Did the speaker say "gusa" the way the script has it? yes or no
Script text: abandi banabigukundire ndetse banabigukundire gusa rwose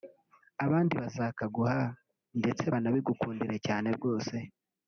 no